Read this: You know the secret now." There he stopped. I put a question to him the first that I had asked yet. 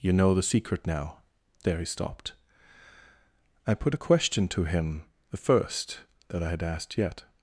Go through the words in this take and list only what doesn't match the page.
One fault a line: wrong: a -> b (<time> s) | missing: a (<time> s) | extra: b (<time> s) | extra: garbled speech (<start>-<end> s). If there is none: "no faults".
no faults